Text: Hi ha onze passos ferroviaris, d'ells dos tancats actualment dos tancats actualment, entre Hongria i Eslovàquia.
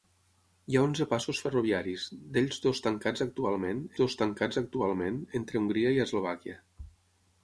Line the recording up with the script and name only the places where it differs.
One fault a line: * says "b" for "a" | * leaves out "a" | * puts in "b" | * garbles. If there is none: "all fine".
all fine